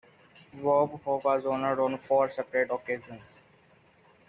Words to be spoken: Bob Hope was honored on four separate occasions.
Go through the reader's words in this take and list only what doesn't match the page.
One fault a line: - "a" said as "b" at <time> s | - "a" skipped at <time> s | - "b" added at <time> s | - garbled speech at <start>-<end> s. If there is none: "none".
none